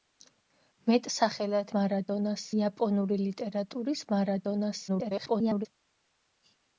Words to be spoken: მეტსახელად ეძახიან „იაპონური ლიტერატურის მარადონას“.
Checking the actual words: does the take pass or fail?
fail